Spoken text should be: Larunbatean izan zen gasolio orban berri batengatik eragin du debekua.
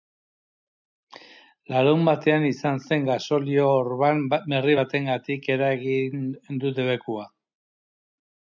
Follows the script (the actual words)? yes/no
yes